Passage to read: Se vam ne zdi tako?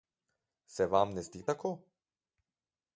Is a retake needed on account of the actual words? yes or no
no